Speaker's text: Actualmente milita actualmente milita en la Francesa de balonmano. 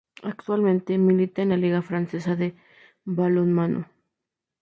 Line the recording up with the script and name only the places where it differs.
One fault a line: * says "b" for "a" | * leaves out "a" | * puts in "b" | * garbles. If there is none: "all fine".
* leaves out "actualmente milita"
* puts in "Liga"